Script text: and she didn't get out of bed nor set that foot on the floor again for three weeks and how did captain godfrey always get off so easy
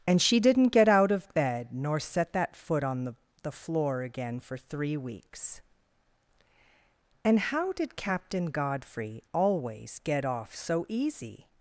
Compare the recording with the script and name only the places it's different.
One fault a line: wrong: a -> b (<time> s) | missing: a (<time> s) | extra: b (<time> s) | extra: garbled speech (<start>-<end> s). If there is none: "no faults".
extra: the (3.4 s)